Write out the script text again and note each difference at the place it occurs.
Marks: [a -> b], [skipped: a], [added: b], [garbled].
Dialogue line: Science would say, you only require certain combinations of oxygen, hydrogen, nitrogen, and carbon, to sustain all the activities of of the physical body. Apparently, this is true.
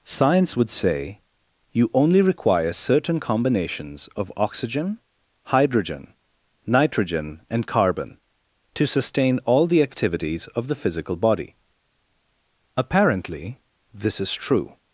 Science would say, you only require certain combinations of oxygen, hydrogen, nitrogen, and carbon, to sustain all the activities of [skipped: of] the physical body. Apparently, this is true.